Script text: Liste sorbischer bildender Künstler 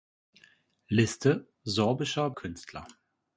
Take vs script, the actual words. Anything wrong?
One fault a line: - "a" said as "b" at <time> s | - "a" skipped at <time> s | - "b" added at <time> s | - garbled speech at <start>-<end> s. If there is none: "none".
- "bildender" skipped at 2.3 s